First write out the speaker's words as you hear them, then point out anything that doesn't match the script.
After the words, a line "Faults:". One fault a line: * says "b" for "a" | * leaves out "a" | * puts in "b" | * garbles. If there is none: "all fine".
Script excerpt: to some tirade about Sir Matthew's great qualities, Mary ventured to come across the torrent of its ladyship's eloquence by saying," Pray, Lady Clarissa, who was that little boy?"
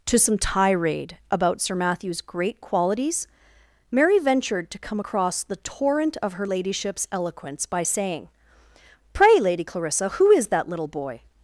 to some tirade about Sir Matthew's great qualities, Mary ventured to come across the torrent of her ladyship's eloquence by saying," Pray, Lady Clarissa, who is that little boy?"
Faults:
* says "her" for "its"
* says "is" for "was"